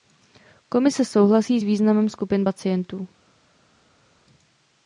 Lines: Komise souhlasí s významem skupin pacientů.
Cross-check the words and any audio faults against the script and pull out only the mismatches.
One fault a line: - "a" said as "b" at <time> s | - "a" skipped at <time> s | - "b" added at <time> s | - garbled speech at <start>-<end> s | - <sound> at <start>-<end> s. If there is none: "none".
none